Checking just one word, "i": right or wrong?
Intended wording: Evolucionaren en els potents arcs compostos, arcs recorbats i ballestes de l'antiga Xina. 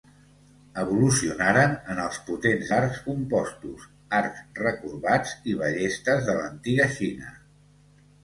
right